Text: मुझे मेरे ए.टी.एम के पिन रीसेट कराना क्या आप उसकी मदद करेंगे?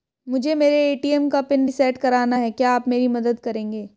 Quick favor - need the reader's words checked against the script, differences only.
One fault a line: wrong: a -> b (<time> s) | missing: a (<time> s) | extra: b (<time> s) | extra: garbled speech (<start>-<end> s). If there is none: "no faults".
wrong: के -> का (1.3 s)
extra: है (2.4 s)
wrong: उसकी -> मेरी (2.9 s)